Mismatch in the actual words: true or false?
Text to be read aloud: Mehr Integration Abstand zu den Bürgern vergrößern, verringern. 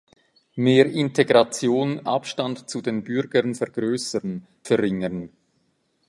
false